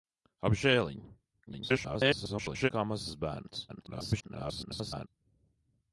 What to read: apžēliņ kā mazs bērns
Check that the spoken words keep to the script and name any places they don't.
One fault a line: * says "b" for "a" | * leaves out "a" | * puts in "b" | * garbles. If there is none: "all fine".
* garbles
* garbles